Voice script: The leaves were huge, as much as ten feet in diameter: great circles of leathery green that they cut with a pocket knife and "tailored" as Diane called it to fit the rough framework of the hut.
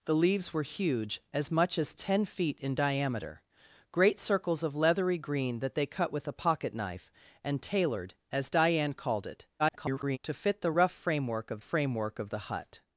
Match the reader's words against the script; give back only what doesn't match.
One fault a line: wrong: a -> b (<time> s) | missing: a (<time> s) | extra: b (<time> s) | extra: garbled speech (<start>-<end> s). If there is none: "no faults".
extra: garbled speech (9.6-10.2 s)
extra: framework of (11.6 s)